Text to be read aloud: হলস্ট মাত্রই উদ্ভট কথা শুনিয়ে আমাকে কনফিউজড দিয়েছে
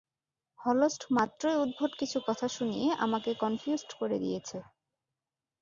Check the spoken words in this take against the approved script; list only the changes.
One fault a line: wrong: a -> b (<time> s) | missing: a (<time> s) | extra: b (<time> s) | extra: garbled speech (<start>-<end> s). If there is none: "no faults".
extra: কিছু (2.0 s)
extra: করে (4.0 s)